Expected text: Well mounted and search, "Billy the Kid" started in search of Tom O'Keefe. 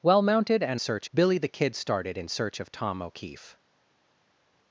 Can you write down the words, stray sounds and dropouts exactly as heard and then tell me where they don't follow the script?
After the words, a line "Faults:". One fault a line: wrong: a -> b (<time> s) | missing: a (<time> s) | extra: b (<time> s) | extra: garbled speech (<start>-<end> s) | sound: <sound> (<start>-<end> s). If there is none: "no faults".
Well mounted and search, "Billy the Kid" started in search of Tom O'Keefe.
Faults:
no faults